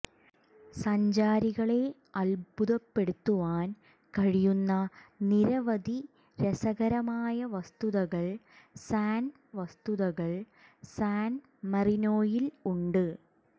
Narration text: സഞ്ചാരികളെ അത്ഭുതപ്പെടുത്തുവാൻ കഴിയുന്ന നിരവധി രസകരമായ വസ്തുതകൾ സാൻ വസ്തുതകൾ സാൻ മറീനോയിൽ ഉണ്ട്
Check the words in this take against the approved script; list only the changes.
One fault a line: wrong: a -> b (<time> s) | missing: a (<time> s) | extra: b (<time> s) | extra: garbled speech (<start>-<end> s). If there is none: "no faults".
no faults